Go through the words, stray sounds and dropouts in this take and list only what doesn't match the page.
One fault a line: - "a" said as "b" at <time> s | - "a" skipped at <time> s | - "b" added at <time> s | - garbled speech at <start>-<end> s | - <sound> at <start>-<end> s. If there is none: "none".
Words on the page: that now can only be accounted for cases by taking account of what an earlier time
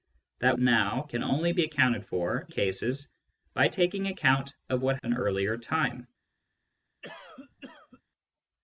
- cough at 7.0-8.0 s